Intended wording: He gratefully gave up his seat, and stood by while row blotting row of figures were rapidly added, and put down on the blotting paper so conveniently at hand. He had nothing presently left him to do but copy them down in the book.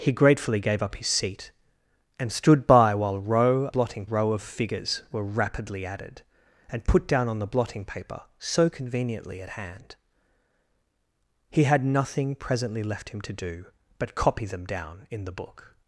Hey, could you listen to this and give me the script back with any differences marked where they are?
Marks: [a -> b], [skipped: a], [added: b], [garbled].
He gratefully gave up his seat, and stood by while row blotting row of figures were rapidly added, and put down on the blotting paper so conveniently at hand. He had nothing presently left him to do but copy them down in the book.